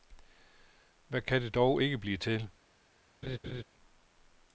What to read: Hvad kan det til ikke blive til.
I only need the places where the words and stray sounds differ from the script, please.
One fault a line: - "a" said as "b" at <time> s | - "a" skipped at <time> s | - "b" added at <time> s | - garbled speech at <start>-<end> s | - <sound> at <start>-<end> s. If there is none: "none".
- "til" said as "dog" at 1.6 s
- laugh at 3.2-3.6 s